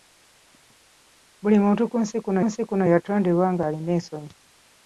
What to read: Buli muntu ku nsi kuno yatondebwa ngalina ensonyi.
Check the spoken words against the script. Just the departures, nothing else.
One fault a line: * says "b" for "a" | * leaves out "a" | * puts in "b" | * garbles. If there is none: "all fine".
* puts in "nsi kuno"